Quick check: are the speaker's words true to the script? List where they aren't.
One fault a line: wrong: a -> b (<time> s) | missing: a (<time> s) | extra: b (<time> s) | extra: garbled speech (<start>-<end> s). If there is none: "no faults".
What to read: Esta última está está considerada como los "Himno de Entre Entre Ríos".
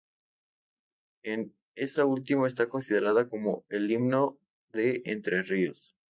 missing: está (2.7 s)
wrong: los -> el (3.7 s)
missing: Entre (5.4 s)